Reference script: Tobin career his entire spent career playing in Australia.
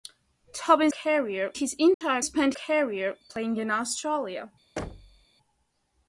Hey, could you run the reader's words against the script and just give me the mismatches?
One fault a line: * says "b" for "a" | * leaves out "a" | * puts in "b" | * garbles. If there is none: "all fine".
all fine